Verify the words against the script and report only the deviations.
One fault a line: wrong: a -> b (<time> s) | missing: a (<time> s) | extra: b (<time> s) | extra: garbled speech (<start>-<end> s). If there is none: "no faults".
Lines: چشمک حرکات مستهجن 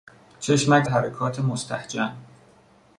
no faults